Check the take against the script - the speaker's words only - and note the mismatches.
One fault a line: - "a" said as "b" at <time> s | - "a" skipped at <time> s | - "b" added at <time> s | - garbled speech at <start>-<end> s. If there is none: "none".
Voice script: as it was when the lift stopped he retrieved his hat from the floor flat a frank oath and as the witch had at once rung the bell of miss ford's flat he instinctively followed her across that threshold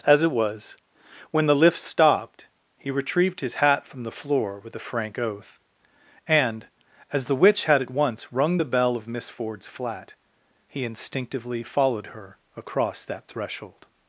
- "flat" said as "with" at 4.6 s